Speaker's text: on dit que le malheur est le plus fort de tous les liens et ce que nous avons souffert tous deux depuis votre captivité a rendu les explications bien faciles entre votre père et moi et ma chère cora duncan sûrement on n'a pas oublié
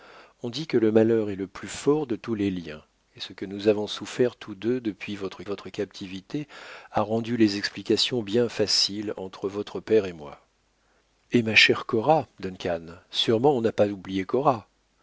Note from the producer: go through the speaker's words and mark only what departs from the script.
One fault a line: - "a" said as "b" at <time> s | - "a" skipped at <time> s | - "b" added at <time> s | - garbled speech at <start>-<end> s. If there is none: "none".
- "votre" added at 5.4 s